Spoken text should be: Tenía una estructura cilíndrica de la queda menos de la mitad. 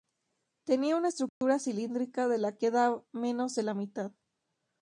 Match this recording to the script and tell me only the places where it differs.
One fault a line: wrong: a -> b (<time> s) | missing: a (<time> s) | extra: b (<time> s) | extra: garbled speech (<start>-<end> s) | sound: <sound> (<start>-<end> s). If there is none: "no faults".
sound: dropout (1.3-1.4 s)